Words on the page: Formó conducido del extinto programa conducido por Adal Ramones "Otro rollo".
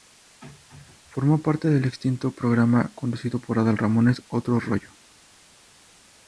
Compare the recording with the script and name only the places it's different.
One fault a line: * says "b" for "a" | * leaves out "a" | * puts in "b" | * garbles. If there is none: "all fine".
* says "parte" for "conducido"